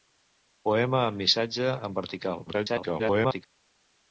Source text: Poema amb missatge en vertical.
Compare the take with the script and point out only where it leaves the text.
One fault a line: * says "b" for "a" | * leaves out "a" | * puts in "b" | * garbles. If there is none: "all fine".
* garbles